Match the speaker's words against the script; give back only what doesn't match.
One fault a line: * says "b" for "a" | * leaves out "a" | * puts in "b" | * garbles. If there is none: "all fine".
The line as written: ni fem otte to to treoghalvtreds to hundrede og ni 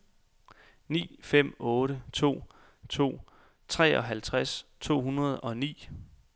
all fine